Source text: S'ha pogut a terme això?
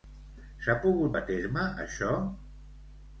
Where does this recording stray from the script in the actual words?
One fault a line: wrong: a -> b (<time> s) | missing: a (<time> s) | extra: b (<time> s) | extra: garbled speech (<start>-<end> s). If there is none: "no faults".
no faults